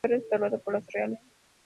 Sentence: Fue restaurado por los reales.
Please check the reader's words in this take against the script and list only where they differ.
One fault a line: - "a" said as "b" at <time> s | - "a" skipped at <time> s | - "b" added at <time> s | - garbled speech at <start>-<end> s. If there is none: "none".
none